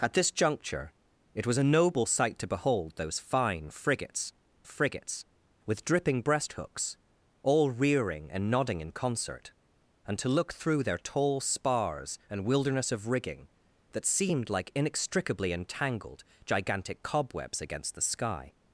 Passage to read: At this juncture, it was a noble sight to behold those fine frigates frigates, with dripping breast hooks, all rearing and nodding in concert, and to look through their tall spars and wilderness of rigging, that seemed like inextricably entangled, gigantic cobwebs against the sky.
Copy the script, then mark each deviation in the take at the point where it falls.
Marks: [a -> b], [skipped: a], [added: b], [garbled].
At this juncture, it was a noble sight to behold those fine frigates frigates, with dripping breast hooks, all rearing and nodding in concert, and to look through their tall spars and wilderness of rigging, that seemed like inextricably entangled, gigantic cobwebs against the sky.